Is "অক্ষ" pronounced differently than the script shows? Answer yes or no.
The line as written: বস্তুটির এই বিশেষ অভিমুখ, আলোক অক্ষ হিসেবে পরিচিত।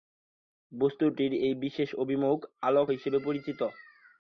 yes